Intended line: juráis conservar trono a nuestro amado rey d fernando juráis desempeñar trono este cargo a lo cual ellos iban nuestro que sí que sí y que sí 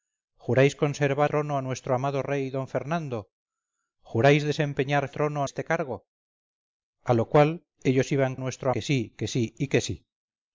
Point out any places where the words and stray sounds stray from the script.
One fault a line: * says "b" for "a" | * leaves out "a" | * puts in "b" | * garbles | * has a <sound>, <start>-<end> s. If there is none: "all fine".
all fine